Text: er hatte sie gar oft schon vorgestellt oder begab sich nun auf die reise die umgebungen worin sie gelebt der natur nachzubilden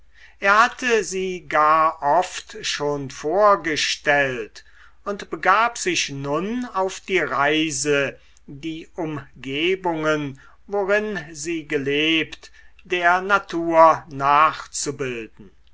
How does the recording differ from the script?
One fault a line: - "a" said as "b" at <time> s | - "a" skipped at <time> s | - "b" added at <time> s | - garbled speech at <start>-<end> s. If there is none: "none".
- "oder" said as "und" at 5.0 s